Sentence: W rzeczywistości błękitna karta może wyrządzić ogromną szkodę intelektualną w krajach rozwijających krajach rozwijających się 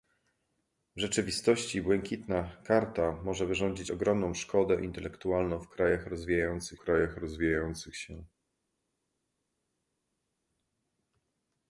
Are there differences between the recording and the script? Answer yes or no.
no